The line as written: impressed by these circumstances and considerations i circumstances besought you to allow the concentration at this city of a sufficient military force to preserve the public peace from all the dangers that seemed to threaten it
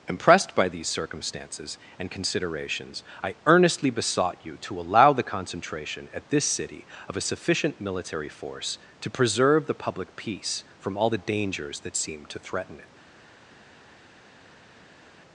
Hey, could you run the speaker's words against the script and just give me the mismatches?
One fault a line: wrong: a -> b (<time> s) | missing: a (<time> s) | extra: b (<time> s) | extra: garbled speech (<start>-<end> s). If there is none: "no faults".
wrong: circumstances -> earnestly (3.5 s)